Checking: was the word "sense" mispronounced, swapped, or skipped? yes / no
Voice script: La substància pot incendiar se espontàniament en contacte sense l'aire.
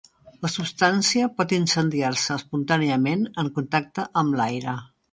yes